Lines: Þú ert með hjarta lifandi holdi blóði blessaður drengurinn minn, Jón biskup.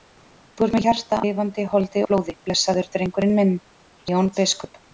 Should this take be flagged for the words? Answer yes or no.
no